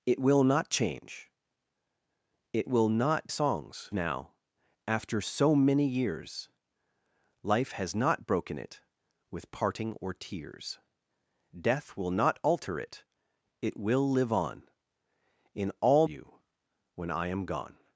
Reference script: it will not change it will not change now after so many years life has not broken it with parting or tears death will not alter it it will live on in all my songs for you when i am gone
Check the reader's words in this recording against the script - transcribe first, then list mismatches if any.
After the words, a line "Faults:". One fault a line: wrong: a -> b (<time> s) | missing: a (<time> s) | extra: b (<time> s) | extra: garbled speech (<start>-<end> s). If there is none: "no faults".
it will not change it will not songs now after so many years life has not broken it with parting or tears death will not alter it it will live on in all you when i am gone
Faults:
wrong: change -> songs (3.3 s)
missing: my songs for (16.1 s)